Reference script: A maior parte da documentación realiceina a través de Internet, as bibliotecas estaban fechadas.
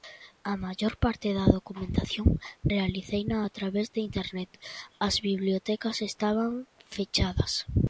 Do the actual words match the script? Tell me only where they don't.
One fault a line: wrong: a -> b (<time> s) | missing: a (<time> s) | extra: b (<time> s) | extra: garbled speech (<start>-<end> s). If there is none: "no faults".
no faults